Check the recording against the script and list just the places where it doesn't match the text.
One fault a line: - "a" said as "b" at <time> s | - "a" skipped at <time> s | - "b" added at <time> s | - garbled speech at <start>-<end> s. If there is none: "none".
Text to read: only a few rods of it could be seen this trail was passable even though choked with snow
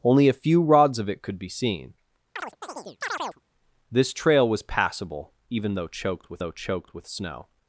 - "though choked with" added at 6.4 s